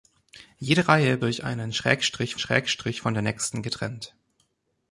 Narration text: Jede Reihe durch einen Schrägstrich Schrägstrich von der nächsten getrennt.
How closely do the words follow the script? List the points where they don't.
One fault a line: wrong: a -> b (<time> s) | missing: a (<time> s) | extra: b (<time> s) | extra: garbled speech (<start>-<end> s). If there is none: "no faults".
no faults